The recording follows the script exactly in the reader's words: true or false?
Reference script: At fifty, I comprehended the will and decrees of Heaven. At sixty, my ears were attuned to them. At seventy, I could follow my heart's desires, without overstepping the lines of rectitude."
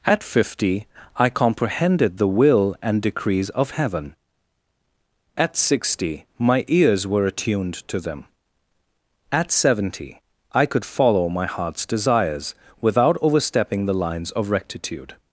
true